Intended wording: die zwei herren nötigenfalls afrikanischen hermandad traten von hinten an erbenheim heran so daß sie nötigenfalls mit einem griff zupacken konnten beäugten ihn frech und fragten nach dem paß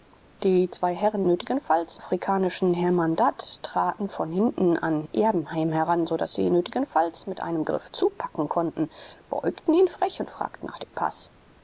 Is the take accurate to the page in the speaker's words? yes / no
yes